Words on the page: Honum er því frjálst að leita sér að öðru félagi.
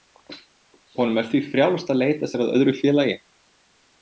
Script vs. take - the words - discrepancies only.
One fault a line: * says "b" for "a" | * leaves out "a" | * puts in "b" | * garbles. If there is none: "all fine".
all fine